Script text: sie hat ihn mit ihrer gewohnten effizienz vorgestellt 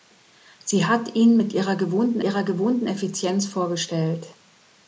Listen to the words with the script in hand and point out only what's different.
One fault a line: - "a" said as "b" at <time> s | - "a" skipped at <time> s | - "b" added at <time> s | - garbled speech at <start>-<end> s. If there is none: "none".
- "ihrer gewohnten" added at 2.2 s